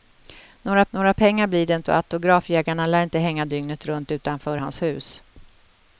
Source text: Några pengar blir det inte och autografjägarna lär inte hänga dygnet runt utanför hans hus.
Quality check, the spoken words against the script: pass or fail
fail